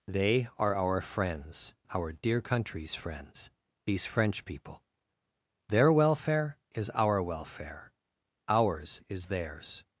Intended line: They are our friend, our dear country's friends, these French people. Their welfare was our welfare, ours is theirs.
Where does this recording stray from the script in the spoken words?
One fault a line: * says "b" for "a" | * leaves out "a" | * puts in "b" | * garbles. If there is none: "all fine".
* says "friends" for "friend"
* says "is" for "was"